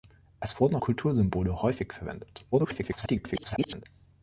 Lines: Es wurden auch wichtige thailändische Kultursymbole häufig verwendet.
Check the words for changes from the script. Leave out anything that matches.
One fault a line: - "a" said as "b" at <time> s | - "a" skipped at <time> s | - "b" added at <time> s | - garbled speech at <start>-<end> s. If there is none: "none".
- "auch wichtige thailändische" skipped at 0.8 s
- garbled speech at 2.5-3.8 s